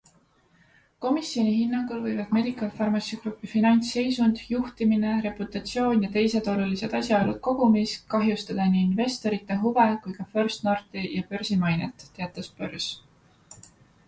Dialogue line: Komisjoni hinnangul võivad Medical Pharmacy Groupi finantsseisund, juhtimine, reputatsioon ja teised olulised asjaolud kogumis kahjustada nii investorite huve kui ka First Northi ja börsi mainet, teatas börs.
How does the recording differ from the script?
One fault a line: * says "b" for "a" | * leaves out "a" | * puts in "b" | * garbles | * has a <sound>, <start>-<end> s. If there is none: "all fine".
all fine